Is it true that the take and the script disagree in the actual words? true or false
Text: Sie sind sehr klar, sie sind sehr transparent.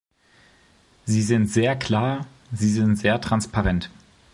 false